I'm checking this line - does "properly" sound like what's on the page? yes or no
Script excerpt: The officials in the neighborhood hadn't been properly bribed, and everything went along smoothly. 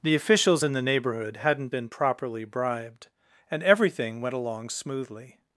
yes